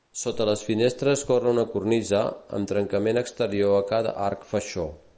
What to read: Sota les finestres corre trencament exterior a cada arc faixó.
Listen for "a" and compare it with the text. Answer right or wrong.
right